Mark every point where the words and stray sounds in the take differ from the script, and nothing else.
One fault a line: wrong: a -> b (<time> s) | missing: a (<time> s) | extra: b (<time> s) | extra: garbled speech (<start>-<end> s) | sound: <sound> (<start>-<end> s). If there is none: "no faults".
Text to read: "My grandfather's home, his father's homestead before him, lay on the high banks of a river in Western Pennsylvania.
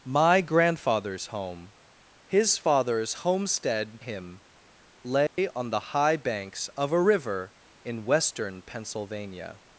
missing: before (4.0 s)
sound: dropout (5.3-5.4 s)